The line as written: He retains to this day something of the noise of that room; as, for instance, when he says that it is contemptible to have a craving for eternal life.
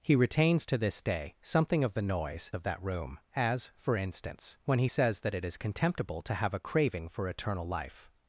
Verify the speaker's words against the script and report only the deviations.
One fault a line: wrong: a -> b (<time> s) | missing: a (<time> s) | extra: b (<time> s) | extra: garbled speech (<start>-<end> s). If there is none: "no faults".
no faults